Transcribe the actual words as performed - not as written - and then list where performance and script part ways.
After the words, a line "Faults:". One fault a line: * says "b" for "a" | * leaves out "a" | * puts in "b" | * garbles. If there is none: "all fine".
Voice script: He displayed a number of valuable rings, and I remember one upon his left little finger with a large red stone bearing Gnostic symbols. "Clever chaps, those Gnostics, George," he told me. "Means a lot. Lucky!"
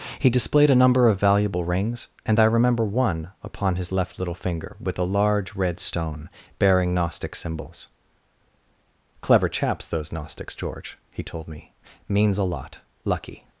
He displayed a number of valuable rings, and I remember one upon his left little finger with a large red stone bearing Gnostic symbols. "Clever chaps, those Gnostics, George," he told me. "Means a lot. Lucky!"
Faults:
all fine